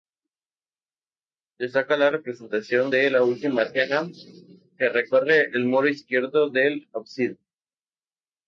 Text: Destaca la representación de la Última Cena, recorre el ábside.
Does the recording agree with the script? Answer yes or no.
no